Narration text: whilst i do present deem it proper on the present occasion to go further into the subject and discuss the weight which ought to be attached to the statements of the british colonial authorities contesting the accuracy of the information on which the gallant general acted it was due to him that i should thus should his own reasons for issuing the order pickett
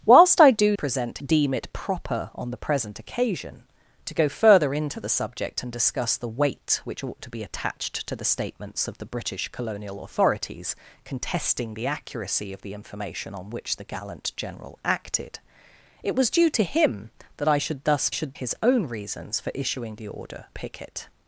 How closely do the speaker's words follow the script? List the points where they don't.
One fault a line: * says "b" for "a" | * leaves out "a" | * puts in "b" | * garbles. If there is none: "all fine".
all fine